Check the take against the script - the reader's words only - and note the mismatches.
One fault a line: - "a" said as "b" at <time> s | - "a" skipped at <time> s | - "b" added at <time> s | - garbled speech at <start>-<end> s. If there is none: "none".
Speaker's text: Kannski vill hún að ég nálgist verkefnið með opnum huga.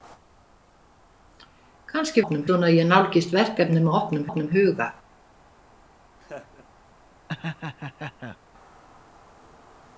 - "vill" said as "opnum" at 2.2 s
- "opnum" added at 4.3 s